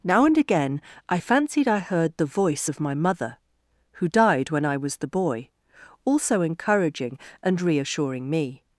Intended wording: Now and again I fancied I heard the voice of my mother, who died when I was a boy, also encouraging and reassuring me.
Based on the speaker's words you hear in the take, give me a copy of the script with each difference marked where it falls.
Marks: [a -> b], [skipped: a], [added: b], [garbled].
Now and again I fancied I heard the voice of my mother, who died when I was [a -> the] boy, also encouraging and reassuring me.